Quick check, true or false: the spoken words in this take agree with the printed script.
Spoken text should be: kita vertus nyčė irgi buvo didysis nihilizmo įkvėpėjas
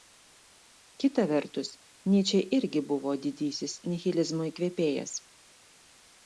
true